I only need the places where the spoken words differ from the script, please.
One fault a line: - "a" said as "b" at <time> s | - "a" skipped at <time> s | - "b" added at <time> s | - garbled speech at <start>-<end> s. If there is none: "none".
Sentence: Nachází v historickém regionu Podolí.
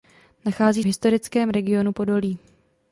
none